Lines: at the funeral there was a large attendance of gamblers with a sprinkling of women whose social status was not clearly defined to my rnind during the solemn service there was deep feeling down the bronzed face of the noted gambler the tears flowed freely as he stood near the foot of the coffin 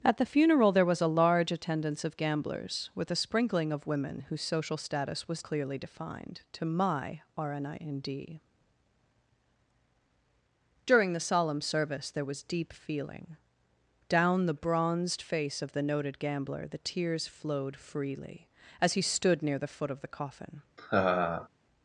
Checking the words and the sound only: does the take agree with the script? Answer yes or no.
no